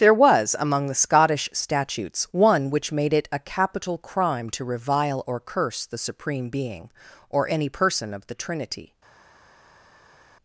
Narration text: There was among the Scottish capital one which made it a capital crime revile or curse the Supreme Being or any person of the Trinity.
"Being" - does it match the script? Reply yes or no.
yes